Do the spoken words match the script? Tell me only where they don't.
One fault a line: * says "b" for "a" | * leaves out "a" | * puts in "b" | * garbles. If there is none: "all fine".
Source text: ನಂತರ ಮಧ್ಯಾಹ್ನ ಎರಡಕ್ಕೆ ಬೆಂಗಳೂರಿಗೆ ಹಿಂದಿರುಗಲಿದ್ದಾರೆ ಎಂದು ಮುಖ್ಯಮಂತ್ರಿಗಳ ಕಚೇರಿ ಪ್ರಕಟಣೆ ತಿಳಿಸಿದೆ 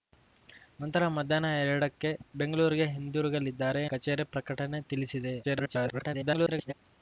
* leaves out "ಎಂದು ಮುಖ್ಯಮಂತ್ರಿಗಳ"
* garbles